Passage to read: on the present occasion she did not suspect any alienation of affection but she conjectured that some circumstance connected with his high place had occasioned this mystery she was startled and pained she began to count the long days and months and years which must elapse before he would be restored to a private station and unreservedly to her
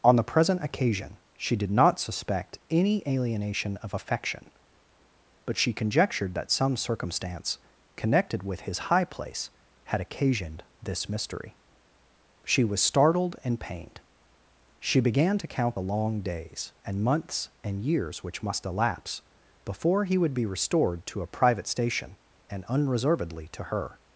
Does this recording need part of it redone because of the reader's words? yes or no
no